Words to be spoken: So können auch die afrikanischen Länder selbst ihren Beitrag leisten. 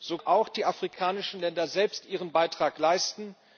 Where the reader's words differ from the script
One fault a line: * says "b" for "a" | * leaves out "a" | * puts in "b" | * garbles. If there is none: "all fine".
* leaves out "können"